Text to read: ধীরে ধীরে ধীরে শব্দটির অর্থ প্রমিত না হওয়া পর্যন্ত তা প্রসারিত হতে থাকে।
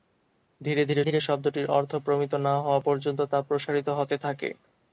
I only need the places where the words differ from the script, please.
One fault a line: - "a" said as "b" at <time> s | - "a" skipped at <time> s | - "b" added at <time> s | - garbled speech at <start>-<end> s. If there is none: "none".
none